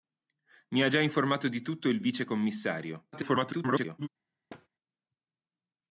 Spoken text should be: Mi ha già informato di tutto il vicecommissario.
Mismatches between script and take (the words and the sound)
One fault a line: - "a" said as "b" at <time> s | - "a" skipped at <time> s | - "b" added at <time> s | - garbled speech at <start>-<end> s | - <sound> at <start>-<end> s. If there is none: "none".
- garbled speech at 3.1-4.1 s
- thud at 4.5-4.7 s